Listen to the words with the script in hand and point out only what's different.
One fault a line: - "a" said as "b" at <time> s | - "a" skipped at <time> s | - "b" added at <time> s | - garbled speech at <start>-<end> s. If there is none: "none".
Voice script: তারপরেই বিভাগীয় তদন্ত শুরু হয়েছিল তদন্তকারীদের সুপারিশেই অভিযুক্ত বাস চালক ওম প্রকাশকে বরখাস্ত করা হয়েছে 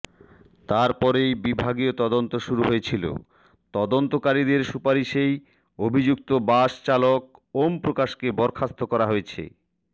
none